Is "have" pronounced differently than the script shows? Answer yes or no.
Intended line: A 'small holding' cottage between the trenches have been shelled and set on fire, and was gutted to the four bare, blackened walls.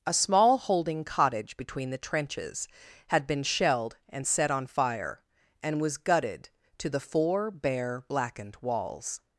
yes